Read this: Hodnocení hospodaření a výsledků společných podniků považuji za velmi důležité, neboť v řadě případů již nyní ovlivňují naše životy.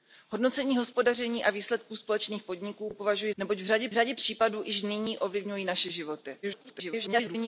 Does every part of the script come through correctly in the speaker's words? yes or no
no